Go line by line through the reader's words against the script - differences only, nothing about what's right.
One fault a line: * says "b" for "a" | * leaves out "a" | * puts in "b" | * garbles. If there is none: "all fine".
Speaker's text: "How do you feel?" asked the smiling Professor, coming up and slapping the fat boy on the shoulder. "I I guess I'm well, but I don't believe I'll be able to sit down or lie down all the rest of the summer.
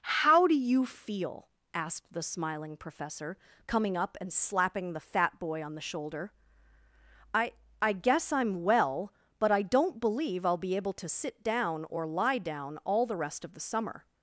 all fine